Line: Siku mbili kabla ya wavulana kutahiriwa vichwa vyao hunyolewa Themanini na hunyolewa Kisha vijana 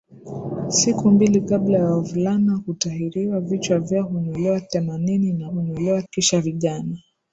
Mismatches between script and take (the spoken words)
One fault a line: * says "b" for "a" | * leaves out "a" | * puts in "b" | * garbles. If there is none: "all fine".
all fine